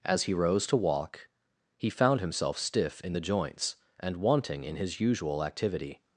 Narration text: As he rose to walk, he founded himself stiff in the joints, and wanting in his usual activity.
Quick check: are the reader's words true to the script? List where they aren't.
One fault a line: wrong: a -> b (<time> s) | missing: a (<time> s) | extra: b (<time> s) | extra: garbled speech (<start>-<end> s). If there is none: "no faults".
wrong: founded -> found (1.9 s)